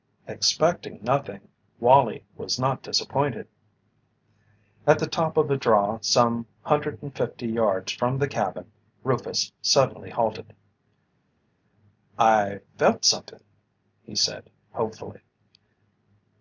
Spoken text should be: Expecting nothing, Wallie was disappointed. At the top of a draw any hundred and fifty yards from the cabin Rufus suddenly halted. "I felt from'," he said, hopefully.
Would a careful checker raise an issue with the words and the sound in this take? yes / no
yes